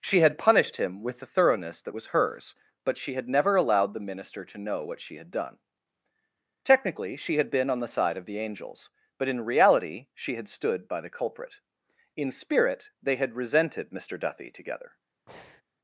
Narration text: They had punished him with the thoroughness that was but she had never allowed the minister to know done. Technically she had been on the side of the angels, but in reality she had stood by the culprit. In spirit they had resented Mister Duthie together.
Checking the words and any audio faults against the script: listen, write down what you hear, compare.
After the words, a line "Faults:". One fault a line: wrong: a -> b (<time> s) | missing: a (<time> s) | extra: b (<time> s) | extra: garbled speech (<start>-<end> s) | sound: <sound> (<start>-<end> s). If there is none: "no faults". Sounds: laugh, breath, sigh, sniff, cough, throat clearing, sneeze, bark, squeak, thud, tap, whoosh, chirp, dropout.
She had punished him with the thoroughness that was hers, but she had never allowed the minister to know what she had done. Technically she had been on the side of the angels, but in reality she had stood by the culprit. In spirit they had resented Mister Duthie together.
Faults:
wrong: They -> She (0.0 s)
extra: hers (2.1 s)
extra: what she had (4.8 s)
sound: breath (15.3-15.6 s)